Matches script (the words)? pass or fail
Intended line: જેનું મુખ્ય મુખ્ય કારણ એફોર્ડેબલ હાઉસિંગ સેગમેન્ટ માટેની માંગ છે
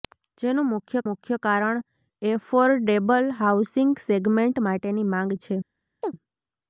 pass